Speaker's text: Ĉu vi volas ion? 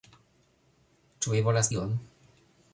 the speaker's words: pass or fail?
pass